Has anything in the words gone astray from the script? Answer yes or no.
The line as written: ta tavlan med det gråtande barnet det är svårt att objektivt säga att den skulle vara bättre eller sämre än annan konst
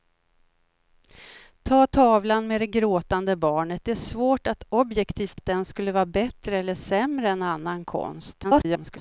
yes